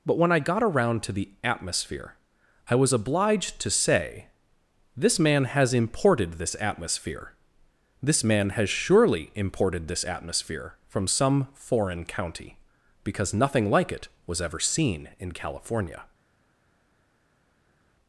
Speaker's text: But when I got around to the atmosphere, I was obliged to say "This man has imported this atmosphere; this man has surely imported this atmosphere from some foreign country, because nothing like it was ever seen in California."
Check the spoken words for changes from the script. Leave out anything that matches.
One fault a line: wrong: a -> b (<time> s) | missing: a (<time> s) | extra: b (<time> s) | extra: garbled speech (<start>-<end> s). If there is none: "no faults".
wrong: country -> county (12.0 s)